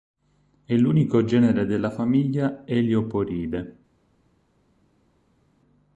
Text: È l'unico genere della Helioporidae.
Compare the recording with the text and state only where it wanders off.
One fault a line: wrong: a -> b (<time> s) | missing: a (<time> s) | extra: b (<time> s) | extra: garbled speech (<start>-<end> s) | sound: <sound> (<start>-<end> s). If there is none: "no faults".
extra: famiglia (1.9 s)